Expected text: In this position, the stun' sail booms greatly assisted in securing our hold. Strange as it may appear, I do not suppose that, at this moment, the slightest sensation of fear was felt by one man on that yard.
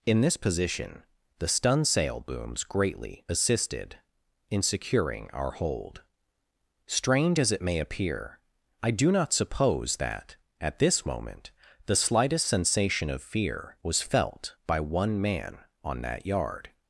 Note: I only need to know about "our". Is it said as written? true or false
true